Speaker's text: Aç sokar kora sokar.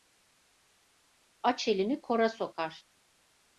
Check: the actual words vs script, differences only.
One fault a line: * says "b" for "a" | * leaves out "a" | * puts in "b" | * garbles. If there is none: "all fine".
* says "elini" for "sokar"